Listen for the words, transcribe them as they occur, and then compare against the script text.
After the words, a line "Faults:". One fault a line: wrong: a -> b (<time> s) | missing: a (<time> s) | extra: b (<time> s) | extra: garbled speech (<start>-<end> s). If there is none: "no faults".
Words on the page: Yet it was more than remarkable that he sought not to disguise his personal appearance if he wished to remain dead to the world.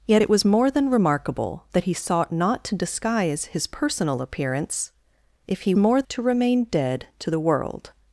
Yet it was more than remarkable that he sought not to disguise his personal appearance if he more to remain dead to the world.
Faults:
wrong: wished -> more (5.8 s)